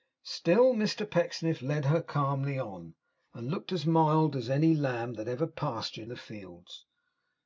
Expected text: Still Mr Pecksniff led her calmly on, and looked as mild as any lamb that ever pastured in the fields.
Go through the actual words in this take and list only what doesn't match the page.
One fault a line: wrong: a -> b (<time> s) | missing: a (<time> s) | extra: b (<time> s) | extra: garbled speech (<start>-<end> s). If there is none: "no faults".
missing: in (6.1 s)